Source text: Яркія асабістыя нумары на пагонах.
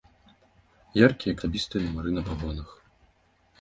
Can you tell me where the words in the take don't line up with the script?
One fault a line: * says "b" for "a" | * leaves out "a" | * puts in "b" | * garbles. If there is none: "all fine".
all fine